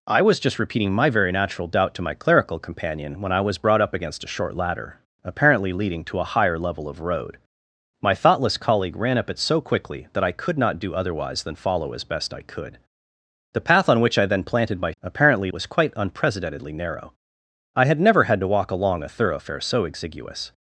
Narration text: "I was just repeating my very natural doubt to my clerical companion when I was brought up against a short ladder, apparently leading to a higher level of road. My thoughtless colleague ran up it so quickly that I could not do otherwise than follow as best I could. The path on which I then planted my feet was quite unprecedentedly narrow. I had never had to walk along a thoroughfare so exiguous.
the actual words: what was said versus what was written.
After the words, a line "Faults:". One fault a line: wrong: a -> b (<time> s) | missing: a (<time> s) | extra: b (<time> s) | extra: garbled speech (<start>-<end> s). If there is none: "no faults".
"I was just repeating my very natural doubt to my clerical companion when I was brought up against a short ladder, apparently leading to a higher level of road. My thoughtless colleague ran up it so quickly that I could not do otherwise than follow as best I could. The path on which I then planted my apparently was quite unprecedentedly narrow. I had never had to walk along a thoroughfare so exiguous.
Faults:
wrong: feet -> apparently (15.0 s)